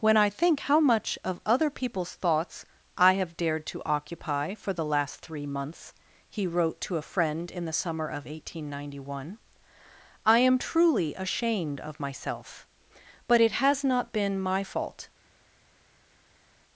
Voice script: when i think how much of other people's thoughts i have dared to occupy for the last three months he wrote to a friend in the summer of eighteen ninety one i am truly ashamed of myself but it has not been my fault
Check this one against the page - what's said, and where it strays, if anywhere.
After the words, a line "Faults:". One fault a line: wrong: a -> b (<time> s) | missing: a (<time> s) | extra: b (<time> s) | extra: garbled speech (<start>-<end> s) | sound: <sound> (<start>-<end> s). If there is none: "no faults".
when i think how much of other people's thoughts i have dared to occupy for the last three months he wrote to a friend in the summer of eighteen ninety one i am truly ashamed of myself but it has not been my fault
Faults:
no faults